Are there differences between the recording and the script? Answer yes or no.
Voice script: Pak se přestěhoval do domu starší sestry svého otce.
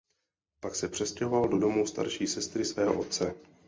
no